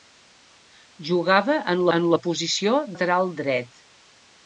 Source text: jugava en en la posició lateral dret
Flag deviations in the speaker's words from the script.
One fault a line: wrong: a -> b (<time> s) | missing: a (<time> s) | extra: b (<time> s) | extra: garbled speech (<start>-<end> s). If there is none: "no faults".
no faults